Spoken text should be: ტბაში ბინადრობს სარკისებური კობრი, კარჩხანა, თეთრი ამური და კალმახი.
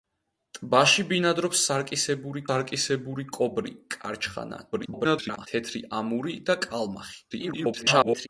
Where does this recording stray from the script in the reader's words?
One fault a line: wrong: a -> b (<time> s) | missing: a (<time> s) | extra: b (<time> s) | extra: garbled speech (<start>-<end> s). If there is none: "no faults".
extra: სარკისებური (2.5 s)
extra: garbled speech (4.7-5.5 s)
extra: garbled speech (7.3-8.3 s)